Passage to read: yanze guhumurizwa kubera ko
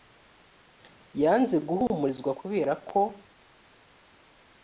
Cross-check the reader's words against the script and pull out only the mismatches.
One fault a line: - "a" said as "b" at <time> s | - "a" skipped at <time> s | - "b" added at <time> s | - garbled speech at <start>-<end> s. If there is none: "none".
none